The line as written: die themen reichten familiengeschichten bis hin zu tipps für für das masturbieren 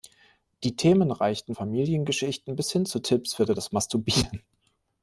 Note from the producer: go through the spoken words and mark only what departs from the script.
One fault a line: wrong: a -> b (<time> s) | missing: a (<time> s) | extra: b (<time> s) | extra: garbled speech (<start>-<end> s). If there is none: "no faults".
no faults